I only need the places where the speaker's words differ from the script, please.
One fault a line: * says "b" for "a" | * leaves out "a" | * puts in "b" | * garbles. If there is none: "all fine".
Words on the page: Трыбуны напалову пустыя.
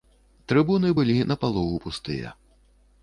* puts in "былі"